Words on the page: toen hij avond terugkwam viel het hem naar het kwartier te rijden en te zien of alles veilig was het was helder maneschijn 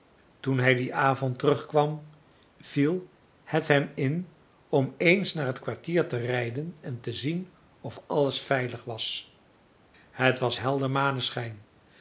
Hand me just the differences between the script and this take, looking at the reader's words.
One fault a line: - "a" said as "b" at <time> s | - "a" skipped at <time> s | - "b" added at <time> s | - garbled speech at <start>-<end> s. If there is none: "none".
- "dien" added at 0.8 s
- "in om eens" added at 4.0 s